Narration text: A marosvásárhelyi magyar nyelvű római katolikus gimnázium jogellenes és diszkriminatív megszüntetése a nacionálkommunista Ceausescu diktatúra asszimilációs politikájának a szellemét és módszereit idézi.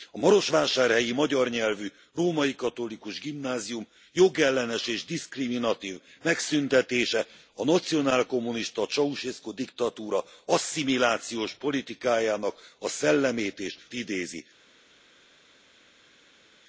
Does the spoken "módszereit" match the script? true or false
false